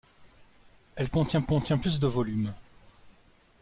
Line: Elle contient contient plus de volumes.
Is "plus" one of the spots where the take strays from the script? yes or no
no